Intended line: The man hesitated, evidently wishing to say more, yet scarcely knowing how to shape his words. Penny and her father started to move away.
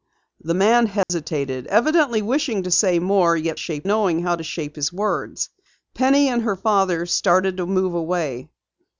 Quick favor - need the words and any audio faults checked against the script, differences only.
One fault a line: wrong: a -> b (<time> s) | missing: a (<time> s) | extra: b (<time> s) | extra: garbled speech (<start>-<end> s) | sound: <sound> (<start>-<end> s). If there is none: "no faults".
sound: dropout (1.0-1.1 s)
wrong: scarcely -> shape (3.5 s)